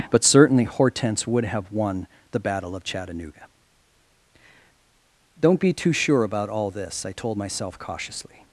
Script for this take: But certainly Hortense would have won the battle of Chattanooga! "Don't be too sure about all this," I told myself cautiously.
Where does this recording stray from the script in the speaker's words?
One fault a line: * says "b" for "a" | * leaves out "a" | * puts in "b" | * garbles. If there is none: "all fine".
all fine